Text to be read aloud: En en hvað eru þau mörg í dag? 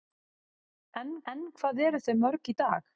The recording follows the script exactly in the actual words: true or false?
true